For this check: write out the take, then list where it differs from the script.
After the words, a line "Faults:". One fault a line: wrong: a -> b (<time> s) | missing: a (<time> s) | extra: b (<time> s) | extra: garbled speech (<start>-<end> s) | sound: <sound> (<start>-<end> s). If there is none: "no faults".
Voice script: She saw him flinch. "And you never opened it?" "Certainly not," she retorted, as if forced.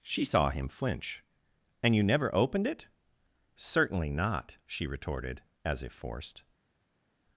She saw him flinch. "And you never opened it?" "Certainly not," she retorted, as if forced.
Faults:
no faults